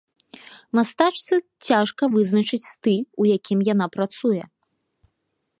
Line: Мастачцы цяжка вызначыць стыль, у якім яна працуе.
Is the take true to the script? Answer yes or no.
yes